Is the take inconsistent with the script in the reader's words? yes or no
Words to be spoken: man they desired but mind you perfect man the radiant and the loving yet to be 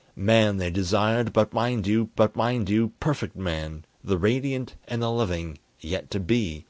yes